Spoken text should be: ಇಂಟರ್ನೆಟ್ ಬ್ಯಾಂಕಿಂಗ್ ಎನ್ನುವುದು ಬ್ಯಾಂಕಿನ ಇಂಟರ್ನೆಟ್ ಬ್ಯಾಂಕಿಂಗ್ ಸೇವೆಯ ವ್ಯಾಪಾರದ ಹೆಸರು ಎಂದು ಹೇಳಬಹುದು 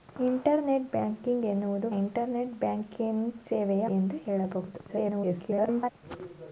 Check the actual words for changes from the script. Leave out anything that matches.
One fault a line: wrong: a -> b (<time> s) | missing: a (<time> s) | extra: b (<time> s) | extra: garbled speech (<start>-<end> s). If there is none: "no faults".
missing: ಬ್ಯಾಂಕಿನ (1.9 s)
missing: ವ್ಯಾಪಾರದ ಹೆಸರು (3.9 s)
extra: garbled speech (4.9-5.9 s)